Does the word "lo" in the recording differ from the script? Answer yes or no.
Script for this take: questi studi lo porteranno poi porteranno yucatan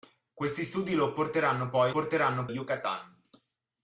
no